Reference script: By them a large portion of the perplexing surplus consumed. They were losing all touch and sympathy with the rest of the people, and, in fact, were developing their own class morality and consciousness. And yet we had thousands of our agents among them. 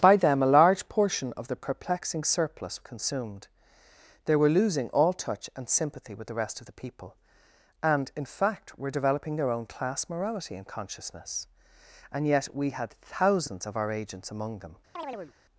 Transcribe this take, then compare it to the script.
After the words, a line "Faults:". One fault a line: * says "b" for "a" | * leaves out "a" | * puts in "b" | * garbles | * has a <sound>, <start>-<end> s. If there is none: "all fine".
By them a large portion of the perplexing surplus consumed. They were losing all touch and sympathy with the rest of the people, and, in fact, were developing their own class morality and consciousness. And yet we had thousands of our agents among them.
Faults:
* has a chirp, 15.0-15.3 s